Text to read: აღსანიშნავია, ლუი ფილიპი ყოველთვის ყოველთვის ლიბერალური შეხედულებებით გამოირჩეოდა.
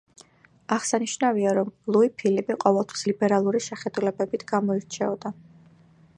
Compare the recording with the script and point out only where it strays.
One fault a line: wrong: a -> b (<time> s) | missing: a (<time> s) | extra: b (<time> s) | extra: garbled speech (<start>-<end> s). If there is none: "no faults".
extra: რომ (1.6 s)
missing: ყოველთვის (3.0 s)